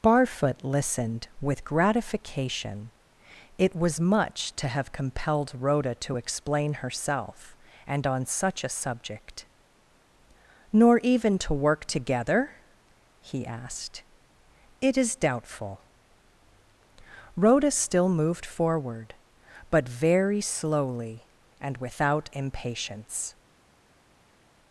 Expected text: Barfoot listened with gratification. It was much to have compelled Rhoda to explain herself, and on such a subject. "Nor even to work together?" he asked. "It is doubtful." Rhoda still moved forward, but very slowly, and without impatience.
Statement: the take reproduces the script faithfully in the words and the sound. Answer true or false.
true